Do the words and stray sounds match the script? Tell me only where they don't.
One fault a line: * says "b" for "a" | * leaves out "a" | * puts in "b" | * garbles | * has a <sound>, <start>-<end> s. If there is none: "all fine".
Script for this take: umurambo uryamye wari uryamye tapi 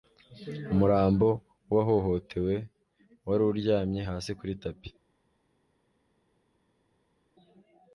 * says "w'uwahohotewe" for "uryamye"
* puts in "hasi kuri"